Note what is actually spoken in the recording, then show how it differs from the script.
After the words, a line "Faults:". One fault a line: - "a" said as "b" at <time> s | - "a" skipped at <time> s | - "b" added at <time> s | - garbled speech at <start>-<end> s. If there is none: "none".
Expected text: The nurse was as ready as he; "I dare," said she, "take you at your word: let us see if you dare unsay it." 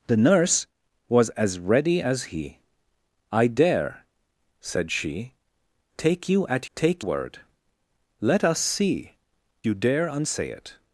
The nurse was as ready as he; "I dare," said she, "take you at take word: let us see you dare unsay it."
Faults:
- "your" said as "take" at 6.7 s
- "if" skipped at 9.2 s